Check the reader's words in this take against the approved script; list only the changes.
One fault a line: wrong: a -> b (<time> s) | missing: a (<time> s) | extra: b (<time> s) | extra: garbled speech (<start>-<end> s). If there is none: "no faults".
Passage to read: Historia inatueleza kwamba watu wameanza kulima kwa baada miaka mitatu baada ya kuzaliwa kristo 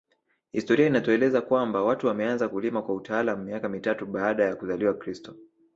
wrong: baada -> utaalamu (3.0 s)